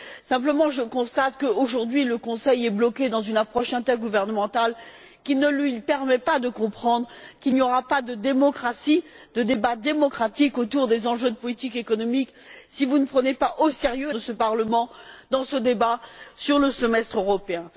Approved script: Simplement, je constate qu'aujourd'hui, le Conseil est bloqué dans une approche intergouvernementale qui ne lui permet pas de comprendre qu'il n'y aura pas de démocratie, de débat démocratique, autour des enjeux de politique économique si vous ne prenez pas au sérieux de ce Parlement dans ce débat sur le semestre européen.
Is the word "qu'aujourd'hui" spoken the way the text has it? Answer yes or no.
yes